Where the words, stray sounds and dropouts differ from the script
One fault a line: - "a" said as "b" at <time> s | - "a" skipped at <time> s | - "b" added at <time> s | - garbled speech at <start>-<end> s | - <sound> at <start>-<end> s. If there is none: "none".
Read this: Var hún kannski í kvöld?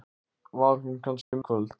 - dropout at 1.2-1.3 s